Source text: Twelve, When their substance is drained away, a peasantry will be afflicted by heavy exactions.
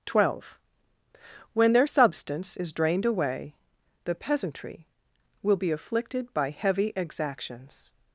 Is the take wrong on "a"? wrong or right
wrong